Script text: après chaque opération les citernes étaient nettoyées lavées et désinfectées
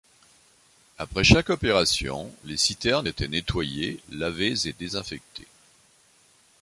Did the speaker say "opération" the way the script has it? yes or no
yes